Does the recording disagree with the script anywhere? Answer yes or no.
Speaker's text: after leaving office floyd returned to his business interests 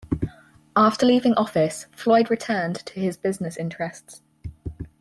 no